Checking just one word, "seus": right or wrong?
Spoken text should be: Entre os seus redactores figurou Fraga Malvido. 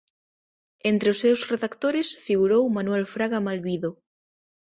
right